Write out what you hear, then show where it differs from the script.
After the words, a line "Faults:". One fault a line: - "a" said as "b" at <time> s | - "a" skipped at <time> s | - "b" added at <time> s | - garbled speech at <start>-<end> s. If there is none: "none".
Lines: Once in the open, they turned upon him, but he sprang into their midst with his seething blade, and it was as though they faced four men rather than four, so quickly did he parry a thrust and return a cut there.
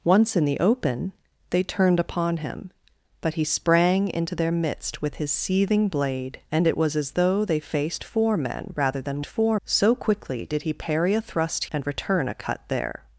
Once in the open, they turned upon him, but he sprang into their midst with his seething blade, and it was as though they faced four men rather than four, so quickly did he parry a thrust and return a cut there.
Faults:
none